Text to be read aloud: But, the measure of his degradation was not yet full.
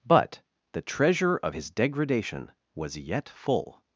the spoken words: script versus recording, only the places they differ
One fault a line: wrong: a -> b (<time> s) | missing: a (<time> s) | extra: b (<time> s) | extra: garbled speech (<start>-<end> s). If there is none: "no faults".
wrong: measure -> treasure (0.8 s)
missing: not (3.0 s)